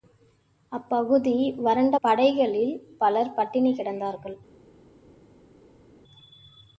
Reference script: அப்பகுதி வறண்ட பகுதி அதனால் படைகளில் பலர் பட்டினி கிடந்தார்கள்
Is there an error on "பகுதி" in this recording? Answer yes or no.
yes